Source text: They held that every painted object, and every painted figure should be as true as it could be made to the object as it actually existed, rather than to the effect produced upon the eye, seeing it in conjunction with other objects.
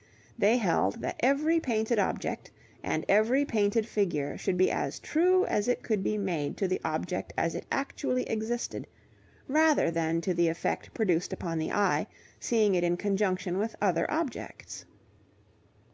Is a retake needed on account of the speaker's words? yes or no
no